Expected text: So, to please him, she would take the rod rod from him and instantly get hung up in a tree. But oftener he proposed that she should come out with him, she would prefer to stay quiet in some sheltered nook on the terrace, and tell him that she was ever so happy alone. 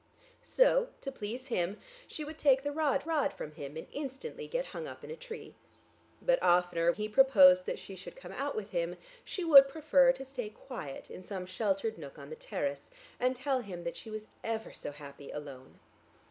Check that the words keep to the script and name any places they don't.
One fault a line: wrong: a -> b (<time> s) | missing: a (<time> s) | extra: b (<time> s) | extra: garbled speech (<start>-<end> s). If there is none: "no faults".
no faults